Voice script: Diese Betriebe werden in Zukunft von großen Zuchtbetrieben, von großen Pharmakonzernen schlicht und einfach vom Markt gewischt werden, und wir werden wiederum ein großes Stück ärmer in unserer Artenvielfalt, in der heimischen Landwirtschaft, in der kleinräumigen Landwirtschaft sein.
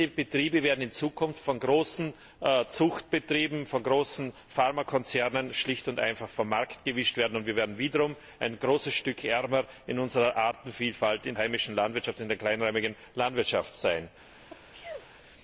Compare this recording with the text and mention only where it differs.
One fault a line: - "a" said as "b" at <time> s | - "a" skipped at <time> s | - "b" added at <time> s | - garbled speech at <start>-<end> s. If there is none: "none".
- "der" skipped at 11.4 s